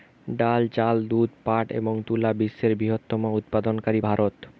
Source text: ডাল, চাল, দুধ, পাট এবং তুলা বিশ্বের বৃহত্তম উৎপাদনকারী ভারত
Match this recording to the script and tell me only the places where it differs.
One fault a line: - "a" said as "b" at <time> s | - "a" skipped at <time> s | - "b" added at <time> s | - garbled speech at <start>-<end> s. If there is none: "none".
none